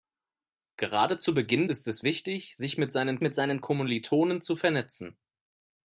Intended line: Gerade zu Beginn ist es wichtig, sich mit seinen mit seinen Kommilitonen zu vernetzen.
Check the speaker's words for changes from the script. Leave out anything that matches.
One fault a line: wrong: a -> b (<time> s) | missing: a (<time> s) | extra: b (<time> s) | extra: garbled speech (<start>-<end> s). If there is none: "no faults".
no faults